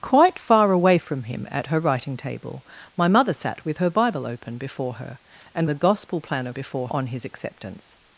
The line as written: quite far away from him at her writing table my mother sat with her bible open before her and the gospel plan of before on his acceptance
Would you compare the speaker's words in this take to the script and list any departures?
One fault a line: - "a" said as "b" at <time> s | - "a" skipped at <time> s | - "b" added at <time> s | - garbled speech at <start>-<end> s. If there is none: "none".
none